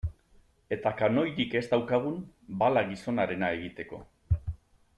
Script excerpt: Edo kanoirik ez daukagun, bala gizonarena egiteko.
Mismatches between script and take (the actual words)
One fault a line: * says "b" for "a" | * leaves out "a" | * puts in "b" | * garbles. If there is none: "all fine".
* says "Eta" for "Edo"